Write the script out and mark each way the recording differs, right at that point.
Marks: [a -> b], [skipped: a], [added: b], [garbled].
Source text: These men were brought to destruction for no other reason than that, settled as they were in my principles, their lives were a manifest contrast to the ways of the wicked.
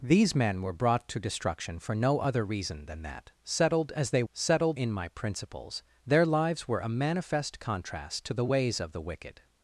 These men were brought to destruction for no other reason than that, settled as they [were -> settled] in my principles, their lives were a manifest contrast to the ways of the wicked.